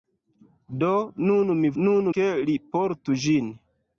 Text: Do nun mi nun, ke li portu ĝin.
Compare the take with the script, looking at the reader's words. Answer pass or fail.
pass